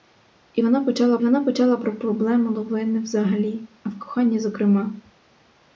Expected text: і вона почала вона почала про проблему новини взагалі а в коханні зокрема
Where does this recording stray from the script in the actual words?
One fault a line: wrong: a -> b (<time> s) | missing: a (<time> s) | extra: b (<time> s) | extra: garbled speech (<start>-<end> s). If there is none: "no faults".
no faults